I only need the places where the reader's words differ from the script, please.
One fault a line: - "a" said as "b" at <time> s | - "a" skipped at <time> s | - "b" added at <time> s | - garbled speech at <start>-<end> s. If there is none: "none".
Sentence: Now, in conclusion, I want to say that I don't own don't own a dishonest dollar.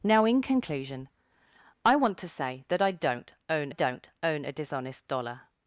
none